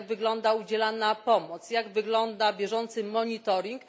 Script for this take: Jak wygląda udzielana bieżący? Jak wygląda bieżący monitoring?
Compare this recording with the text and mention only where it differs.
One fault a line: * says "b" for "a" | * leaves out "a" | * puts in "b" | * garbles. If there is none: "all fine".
* says "pomoc" for "bieżący"